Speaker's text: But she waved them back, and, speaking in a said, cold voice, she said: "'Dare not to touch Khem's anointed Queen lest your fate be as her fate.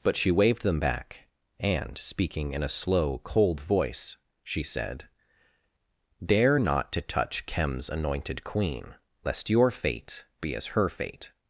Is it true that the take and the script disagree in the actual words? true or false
true